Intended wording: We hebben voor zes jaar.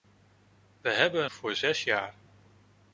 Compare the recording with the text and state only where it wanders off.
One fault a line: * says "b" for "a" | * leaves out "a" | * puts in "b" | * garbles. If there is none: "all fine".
all fine